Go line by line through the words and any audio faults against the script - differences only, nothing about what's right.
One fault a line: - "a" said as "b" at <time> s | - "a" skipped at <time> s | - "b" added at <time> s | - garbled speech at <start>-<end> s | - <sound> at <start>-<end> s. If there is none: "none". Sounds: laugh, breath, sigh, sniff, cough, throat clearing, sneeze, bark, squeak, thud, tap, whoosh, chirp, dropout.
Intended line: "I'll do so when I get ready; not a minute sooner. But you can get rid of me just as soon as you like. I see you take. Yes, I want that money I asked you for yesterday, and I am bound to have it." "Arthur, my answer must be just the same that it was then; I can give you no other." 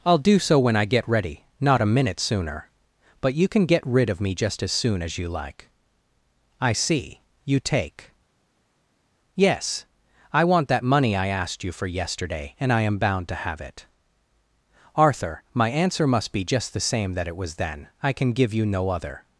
none